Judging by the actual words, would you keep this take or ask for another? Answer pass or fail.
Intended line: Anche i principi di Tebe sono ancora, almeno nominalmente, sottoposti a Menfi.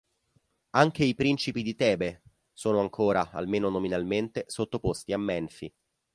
pass